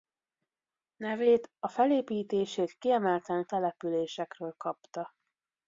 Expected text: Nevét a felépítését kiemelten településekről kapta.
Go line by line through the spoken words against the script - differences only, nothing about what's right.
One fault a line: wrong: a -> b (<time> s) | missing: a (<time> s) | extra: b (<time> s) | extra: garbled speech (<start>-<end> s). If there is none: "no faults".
no faults